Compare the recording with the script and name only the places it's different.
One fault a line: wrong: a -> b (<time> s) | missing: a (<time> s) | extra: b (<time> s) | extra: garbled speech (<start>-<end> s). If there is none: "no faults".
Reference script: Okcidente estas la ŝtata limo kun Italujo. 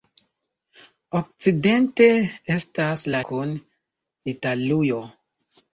missing: ŝtata limo (3.2 s)